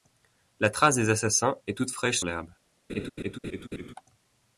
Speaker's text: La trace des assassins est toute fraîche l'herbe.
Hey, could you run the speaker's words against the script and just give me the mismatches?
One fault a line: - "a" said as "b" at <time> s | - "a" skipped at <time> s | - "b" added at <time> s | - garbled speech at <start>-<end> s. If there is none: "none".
none